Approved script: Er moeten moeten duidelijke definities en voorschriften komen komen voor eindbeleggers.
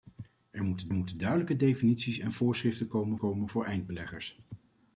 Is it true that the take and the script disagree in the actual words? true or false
false